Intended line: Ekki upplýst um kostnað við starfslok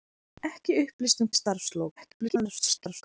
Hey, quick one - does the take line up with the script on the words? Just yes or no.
no